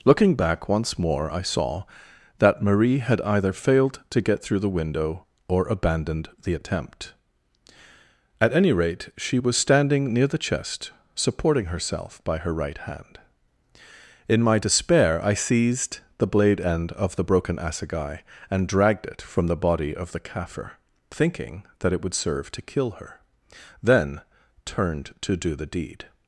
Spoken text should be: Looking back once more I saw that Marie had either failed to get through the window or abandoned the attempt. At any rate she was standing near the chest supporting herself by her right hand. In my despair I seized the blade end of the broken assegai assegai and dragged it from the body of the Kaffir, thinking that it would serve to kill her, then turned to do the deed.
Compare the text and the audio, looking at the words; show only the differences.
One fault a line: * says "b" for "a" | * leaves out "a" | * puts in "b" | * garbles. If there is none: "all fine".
* leaves out "assegai"